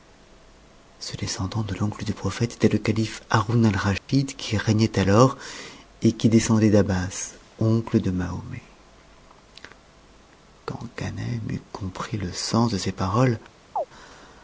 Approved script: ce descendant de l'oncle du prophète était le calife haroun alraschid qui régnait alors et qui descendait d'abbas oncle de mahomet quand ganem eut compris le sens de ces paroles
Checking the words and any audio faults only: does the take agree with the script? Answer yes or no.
no